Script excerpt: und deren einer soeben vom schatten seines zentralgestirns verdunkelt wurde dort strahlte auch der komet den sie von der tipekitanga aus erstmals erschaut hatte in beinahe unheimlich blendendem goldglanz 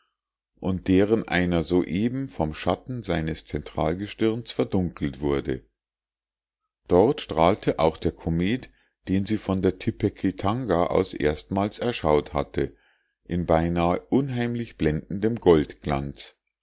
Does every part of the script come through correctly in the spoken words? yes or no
yes